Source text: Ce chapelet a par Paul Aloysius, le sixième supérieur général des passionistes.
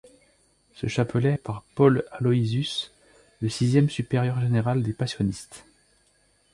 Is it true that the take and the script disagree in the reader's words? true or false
false